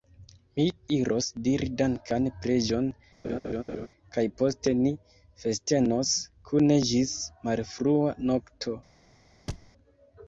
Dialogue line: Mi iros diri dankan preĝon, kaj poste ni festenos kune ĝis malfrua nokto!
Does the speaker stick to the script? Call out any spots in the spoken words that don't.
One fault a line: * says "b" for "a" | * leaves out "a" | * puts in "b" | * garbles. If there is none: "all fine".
all fine